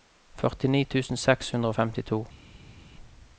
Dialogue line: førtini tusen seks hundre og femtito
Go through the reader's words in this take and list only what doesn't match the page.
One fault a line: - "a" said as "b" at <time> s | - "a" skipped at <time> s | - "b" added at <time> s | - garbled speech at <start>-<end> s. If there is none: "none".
none